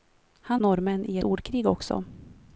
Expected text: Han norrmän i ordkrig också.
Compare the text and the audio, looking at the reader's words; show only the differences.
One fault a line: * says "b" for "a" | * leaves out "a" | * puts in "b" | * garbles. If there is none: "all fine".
all fine